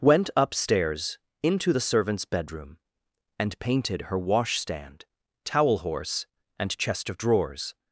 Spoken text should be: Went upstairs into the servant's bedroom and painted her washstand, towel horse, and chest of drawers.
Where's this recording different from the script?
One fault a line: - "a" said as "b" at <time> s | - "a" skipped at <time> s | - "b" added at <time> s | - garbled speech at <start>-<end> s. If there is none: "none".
none